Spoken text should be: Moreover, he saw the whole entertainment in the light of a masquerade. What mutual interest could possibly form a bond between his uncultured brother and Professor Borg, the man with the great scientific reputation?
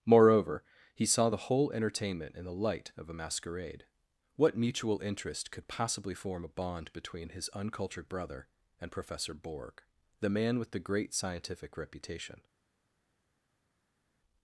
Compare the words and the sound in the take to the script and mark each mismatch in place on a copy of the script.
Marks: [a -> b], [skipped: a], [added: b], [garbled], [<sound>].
Moreover, he saw the whole entertainment in the light of a masquerade. What mutual interest could possibly form a bond between his uncultured brother and Professor Borg, the man with the great scientific reputation?